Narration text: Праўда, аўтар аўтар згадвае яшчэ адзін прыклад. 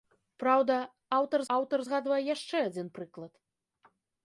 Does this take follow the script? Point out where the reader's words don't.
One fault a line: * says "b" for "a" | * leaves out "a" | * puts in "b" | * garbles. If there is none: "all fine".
all fine